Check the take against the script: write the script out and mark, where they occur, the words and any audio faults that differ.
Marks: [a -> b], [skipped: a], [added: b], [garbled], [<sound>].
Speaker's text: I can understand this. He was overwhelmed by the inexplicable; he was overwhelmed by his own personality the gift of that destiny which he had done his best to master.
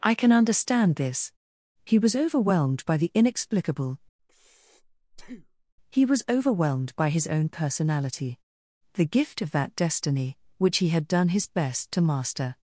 I can understand this. He was overwhelmed by the inexplicable; [breath] he was overwhelmed by his own personality the gift of that destiny which he had done his best to master.